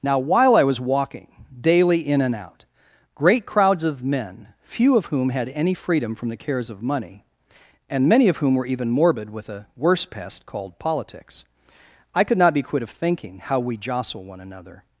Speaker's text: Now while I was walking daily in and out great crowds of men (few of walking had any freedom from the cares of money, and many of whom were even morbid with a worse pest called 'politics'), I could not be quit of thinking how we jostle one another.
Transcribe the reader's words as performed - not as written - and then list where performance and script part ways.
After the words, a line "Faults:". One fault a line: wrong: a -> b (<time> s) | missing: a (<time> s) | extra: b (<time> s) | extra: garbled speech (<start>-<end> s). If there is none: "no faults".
Now while I was walking daily in and out great crowds of men (few of whom had any freedom from the cares of money, and many of whom were even morbid with a worse pest called 'politics'), I could not be quit of thinking how we jostle one another.
Faults:
wrong: walking -> whom (5.1 s)